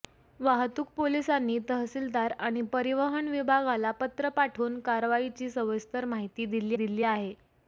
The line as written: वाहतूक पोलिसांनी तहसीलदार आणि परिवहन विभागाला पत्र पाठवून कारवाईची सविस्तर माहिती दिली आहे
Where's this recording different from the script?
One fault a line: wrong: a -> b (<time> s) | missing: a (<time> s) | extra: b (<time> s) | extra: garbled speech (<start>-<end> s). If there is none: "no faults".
extra: दिली (6.7 s)